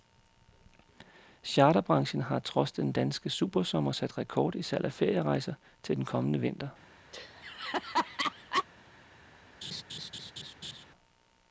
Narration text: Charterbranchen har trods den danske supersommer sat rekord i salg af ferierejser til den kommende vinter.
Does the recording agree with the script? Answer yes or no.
yes